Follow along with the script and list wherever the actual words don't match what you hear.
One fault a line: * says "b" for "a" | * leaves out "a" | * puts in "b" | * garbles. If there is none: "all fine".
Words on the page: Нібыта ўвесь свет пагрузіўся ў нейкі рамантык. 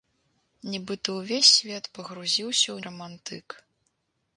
* leaves out "нейкі"